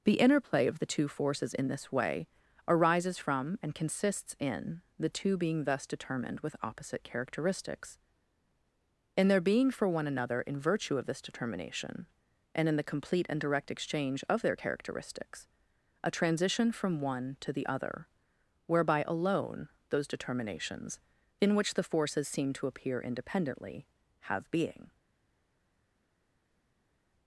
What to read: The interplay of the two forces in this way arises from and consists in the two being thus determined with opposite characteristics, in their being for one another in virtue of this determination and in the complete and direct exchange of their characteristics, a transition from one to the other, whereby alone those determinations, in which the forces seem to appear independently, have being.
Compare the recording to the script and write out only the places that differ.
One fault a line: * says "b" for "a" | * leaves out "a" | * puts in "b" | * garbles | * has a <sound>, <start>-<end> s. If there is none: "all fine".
all fine